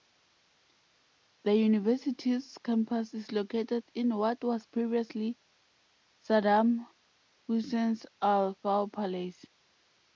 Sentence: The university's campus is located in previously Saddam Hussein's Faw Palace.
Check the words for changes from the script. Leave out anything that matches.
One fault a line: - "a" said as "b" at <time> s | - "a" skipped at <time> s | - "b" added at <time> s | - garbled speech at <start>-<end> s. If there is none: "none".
- "what was" added at 4.2 s
- "Al" added at 8.2 s